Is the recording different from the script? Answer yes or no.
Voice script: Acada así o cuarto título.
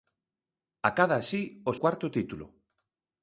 no